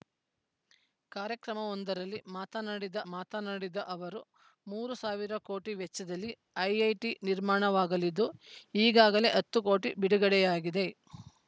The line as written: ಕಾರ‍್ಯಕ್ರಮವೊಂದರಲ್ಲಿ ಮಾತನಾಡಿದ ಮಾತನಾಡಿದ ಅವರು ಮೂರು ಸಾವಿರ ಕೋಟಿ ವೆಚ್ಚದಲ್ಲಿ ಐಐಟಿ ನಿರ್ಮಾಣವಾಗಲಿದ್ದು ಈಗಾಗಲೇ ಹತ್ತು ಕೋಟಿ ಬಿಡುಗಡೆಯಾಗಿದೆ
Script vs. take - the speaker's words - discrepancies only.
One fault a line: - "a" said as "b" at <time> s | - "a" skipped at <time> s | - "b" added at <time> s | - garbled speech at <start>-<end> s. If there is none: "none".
none